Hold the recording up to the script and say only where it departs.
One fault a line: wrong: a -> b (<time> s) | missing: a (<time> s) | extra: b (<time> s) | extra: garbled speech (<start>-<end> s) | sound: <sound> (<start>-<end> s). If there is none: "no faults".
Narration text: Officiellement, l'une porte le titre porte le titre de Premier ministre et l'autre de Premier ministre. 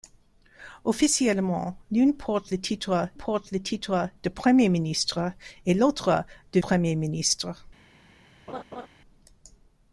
sound: laugh (8.5-8.9 s)